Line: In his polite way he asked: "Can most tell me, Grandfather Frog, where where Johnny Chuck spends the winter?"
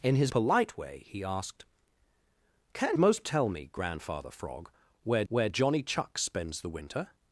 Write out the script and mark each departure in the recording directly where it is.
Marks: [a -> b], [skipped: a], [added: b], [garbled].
In his polite way he asked: "Can most tell me, Grandfather Frog, where where Johnny Chuck spends the winter?"